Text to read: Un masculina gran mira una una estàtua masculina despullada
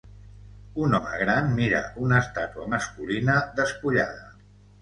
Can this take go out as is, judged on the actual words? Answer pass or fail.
fail